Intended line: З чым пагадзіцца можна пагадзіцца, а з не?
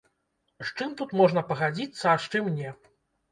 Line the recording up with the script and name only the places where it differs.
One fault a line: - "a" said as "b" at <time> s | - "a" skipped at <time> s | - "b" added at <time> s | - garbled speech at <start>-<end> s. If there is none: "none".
- "пагадзіцца" said as "тут" at 1.0 s
- "чым" added at 2.4 s